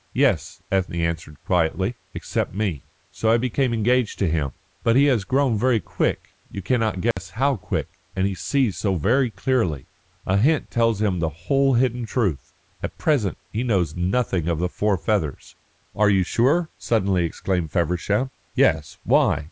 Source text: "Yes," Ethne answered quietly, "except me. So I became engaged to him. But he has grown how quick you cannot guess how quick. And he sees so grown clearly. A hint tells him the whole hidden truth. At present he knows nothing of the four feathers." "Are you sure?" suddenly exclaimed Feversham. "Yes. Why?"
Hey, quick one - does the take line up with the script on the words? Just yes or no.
no